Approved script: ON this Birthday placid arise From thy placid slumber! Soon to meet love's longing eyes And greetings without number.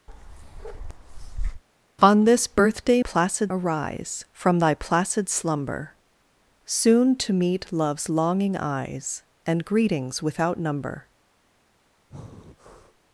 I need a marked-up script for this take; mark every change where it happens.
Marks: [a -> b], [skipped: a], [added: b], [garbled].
ON this Birthday placid arise From thy placid slumber! Soon to meet love's longing eyes And greetings without number.